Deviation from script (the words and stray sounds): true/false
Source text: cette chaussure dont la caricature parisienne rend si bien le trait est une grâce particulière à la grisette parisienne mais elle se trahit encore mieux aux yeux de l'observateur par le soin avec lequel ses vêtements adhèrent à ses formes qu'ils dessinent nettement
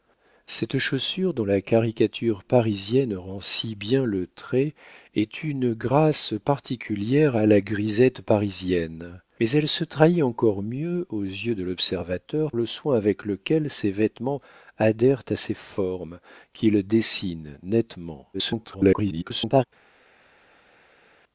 true